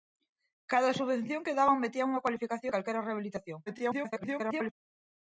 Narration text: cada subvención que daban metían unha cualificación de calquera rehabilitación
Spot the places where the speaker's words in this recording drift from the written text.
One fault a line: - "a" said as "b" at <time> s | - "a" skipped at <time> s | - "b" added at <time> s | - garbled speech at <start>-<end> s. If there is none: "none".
- "de" skipped at 2.7 s
- garbled speech at 3.7-4.7 s